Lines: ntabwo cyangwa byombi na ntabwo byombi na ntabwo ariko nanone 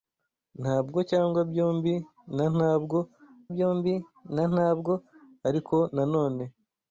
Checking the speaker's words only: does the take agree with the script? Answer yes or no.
yes